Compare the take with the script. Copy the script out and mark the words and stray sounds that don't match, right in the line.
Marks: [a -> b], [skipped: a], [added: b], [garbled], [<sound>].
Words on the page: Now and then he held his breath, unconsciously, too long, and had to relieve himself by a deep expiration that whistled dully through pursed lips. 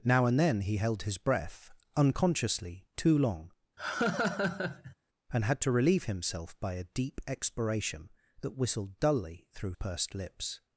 Now and then he held his breath, unconsciously, too long, [laugh] and had to relieve himself by a deep expiration that whistled dully through pursed lips.